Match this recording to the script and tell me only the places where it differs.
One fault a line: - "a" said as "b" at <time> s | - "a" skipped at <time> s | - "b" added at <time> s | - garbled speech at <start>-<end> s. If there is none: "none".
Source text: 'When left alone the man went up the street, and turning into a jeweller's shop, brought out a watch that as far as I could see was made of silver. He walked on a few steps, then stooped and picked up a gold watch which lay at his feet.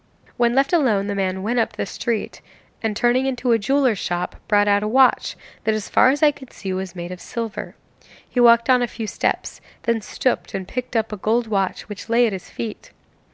none